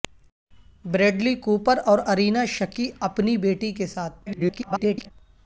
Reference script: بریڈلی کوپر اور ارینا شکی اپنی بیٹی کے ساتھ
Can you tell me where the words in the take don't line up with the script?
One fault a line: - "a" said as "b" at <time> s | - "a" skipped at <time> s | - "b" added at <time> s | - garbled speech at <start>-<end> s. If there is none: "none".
- garbled speech at 4.3-5.1 s